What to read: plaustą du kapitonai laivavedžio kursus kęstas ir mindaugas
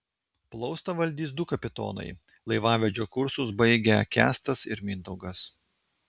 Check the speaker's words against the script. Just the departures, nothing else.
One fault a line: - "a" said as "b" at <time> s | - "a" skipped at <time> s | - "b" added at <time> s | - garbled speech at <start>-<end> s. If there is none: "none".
- "valdys" added at 1.0 s
- "baigę" added at 3.6 s